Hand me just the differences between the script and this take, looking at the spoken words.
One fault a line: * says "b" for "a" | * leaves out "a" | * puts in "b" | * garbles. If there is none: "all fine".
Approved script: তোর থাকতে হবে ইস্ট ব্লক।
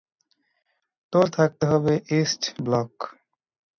all fine